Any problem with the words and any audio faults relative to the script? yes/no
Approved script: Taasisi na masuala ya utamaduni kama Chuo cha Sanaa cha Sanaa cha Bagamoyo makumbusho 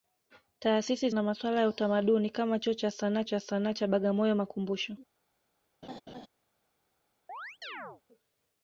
yes